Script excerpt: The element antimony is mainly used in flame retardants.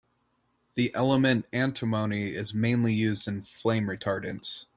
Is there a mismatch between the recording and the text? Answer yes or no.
no